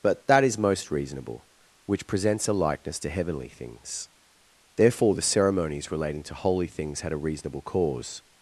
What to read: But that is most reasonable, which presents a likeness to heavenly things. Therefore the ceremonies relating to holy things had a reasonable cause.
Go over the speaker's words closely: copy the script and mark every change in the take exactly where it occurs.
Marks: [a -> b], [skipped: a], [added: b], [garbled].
But that is most reasonable, which presents a likeness to heavenly things. Therefore the ceremonies relating to holy things had a reasonable cause.